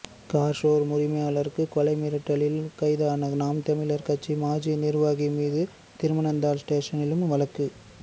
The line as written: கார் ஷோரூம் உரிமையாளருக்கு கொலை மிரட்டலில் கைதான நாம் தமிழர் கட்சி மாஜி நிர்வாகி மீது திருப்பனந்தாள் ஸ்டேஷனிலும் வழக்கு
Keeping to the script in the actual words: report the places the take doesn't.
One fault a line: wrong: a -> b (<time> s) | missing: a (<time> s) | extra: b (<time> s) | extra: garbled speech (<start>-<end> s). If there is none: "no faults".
no faults